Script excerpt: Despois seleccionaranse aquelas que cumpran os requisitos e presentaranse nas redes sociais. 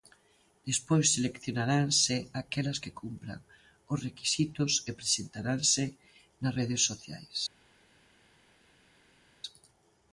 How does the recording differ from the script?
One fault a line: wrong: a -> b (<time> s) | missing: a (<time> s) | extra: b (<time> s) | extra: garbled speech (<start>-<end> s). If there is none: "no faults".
no faults